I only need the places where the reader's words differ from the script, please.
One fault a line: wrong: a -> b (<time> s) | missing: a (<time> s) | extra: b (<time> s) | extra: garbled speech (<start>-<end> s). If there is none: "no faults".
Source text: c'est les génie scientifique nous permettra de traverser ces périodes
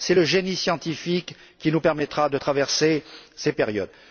wrong: les -> le (0.1 s)
extra: qui (1.6 s)